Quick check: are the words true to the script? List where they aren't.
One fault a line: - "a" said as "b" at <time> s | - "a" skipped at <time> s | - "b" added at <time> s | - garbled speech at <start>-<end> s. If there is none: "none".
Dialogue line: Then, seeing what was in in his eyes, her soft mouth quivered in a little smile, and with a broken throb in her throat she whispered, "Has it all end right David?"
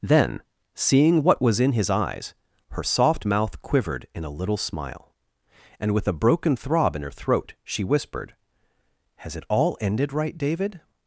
- "in" skipped at 1.7 s
- "end" said as "ended" at 9.8 s